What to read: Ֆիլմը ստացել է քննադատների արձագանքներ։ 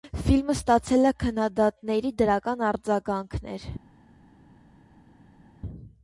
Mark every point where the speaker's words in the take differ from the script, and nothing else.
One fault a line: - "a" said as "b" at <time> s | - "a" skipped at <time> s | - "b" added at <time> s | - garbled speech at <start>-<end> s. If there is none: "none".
- "դրական" added at 2.2 s